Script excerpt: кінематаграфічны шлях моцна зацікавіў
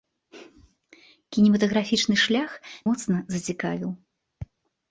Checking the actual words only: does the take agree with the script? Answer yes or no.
yes